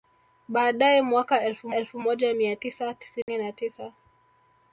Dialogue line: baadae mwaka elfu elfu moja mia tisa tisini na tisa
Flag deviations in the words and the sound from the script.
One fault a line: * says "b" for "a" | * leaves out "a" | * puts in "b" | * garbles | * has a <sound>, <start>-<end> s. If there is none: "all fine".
* has a dropout, 3.2-3.3 s